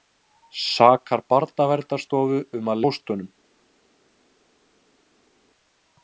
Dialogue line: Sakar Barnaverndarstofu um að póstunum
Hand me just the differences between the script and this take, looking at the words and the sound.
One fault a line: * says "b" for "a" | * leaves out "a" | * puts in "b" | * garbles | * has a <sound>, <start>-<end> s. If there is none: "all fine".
all fine